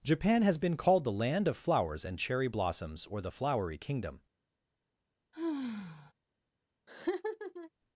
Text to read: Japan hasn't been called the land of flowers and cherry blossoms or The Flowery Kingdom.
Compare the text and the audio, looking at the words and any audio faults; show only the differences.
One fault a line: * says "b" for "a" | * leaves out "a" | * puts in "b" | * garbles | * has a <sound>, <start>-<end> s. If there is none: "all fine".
* says "has" for "hasn't"
* has a sigh, 5.3-6.1 s
* has a laugh, 6.9-7.7 s